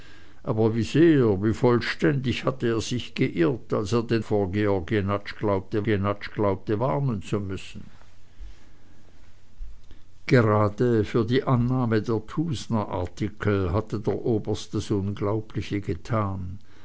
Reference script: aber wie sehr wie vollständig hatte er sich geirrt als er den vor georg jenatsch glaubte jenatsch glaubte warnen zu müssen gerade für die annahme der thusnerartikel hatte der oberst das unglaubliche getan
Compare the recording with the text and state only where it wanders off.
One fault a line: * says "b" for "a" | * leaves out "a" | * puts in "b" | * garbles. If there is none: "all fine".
all fine